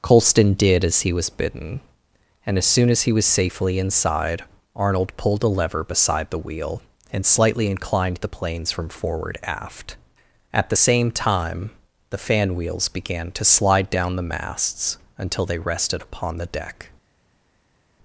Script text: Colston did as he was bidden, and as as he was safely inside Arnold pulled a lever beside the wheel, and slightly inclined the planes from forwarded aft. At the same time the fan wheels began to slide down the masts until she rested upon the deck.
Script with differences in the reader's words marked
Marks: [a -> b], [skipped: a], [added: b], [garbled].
Colston did as he was bidden, and as [added: soon] as he was safely inside Arnold pulled a lever beside the wheel, and slightly inclined the planes from [forwarded -> forward] aft. At the same time the fan wheels began to slide down the masts until [she -> they] rested upon the deck.